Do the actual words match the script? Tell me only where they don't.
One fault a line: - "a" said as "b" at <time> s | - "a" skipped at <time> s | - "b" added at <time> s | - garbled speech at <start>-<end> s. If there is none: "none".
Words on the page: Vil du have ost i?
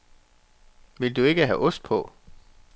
- "ikke" added at 1.2 s
- "i" said as "på" at 1.8 s